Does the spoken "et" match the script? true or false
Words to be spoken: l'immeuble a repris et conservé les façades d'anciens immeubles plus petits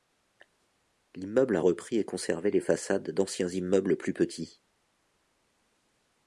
true